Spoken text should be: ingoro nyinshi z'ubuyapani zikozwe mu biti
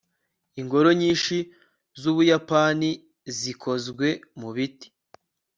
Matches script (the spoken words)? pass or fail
pass